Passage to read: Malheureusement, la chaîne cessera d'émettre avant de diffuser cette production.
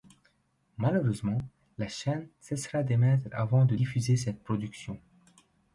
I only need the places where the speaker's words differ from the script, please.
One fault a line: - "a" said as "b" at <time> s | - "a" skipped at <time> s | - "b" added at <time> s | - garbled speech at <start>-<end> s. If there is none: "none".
none